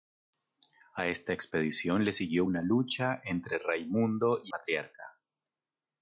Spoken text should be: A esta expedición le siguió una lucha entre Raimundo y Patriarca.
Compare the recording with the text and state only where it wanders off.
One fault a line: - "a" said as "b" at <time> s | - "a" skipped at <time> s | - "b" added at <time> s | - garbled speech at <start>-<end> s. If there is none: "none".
none